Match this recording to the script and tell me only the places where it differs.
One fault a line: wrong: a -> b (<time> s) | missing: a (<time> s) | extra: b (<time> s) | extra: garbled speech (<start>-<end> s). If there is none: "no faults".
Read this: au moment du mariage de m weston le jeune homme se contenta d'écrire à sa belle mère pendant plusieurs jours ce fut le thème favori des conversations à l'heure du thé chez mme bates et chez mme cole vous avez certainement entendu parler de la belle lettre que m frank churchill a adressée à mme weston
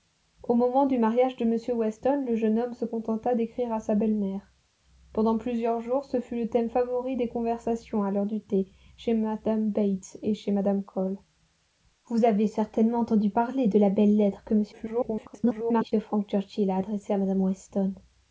extra: garbled speech (14.7-15.9 s)